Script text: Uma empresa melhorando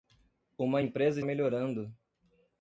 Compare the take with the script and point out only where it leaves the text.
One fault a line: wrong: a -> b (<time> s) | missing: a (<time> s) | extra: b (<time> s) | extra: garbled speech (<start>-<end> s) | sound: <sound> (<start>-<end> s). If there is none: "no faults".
no faults